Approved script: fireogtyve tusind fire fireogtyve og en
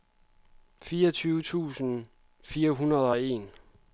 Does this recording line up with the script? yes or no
no